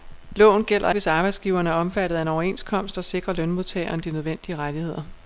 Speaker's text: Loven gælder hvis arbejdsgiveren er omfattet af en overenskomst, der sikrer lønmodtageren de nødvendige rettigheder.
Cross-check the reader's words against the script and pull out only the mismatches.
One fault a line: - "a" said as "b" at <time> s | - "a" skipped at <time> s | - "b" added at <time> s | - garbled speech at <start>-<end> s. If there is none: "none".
none